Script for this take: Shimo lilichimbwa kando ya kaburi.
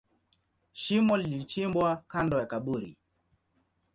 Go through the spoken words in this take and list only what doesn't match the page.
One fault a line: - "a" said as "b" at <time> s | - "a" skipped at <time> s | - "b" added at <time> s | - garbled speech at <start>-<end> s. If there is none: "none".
none